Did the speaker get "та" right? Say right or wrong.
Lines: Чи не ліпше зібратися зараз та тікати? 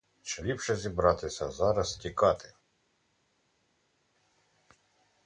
wrong